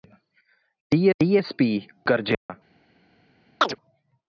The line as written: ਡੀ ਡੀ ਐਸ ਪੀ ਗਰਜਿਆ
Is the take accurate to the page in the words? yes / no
yes